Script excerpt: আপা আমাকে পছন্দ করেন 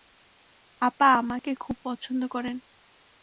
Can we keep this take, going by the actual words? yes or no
no